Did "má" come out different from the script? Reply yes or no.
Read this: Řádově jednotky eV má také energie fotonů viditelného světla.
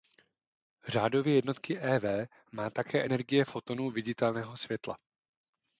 no